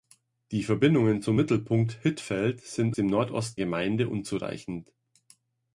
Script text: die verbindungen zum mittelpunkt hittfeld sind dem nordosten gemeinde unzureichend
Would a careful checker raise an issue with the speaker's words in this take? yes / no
no